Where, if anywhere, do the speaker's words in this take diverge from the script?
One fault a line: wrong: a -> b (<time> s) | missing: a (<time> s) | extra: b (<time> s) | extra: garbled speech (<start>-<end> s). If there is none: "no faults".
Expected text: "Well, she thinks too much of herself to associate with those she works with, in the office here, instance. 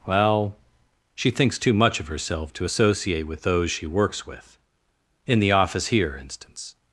no faults